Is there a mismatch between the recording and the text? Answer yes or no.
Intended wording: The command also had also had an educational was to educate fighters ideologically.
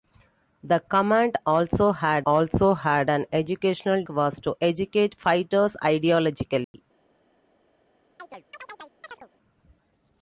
no